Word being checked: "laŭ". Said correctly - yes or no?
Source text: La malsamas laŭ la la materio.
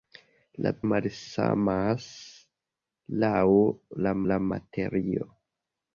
yes